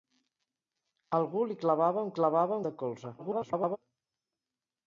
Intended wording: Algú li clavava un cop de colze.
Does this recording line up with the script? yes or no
no